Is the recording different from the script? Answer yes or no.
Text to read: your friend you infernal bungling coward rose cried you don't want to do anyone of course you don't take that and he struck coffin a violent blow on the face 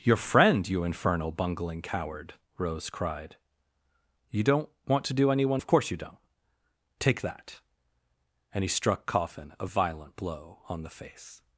no